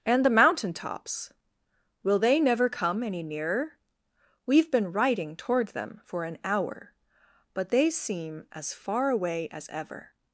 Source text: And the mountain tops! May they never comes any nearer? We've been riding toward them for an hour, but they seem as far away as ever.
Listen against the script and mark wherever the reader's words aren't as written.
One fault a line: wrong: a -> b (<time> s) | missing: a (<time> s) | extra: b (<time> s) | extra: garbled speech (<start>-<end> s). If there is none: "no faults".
wrong: May -> Will (2.0 s)
wrong: comes -> come (2.7 s)